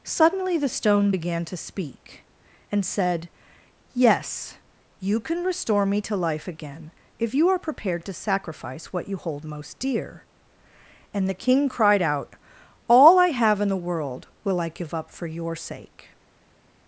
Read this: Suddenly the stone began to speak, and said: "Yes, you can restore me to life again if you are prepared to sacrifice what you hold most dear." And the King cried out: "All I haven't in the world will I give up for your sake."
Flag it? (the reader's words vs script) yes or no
yes